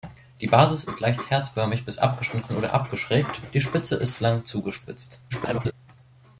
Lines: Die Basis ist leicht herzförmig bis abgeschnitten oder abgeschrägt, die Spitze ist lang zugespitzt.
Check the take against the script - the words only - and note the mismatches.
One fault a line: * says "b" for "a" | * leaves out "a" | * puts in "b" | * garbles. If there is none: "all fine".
* garbles